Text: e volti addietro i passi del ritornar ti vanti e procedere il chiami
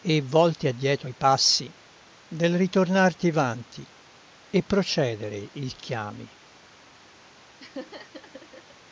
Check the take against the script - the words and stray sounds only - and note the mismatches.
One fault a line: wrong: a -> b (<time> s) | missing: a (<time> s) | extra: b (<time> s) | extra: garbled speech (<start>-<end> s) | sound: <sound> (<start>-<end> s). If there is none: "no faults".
sound: laugh (7.6-8.8 s)